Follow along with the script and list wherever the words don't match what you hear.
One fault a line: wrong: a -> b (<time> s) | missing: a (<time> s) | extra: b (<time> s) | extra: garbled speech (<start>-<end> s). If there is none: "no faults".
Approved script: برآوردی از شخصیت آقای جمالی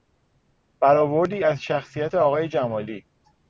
no faults